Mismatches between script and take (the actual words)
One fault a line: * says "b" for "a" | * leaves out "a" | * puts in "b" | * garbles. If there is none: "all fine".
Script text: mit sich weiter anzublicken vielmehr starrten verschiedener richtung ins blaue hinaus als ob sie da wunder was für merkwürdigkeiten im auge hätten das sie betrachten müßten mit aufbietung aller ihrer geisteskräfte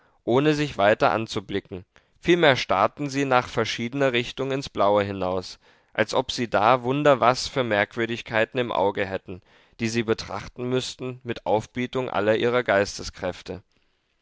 * says "ohne" for "mit"
* puts in "sie nach"
* says "die" for "das"